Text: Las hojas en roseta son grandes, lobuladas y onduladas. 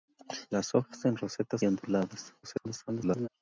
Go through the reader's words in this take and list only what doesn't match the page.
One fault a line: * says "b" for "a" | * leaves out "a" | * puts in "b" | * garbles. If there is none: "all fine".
* leaves out "son grandes lobuladas"
* garbles